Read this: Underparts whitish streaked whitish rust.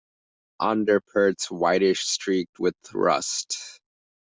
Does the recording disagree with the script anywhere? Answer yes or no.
yes